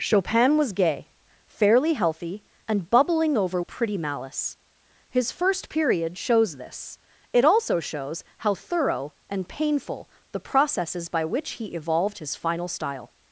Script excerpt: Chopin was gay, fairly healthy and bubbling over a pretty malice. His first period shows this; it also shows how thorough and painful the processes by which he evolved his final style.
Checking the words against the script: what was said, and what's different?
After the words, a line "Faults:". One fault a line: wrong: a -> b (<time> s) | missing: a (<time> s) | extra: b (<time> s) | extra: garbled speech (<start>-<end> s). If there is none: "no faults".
Chopin was gay, fairly healthy and bubbling over a pretty malice. His first period shows this; it also shows how thorough and painful the processes by which he evolved his final style.
Faults:
no faults